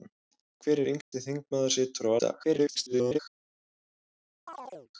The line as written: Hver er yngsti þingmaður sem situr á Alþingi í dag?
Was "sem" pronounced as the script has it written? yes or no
no